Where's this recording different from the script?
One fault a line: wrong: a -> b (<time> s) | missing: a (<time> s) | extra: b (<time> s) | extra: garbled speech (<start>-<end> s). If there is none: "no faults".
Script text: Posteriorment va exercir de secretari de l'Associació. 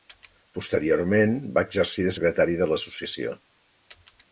no faults